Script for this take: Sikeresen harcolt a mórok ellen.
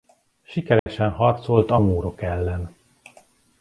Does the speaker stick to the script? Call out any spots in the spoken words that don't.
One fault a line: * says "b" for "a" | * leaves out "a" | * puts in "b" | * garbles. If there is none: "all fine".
all fine